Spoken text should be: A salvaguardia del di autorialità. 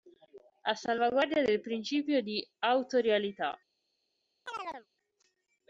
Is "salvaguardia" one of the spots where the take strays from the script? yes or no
no